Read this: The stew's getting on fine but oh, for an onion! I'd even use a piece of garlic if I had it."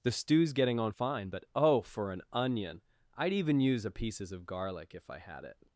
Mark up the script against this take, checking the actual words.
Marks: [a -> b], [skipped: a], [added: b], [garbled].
The stew's getting on fine but oh, for an onion! I'd even use a [piece -> pieces] of garlic if I had it."